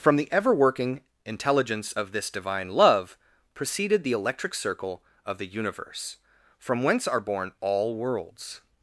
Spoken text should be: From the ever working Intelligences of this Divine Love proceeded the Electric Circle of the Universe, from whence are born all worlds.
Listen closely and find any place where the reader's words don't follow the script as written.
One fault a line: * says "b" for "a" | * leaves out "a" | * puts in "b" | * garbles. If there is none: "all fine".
* says "Intelligence" for "Intelligences"